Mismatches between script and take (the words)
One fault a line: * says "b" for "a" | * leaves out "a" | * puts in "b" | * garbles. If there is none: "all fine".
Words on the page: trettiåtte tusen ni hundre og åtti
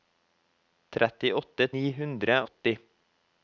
* leaves out "tusen"
* leaves out "og"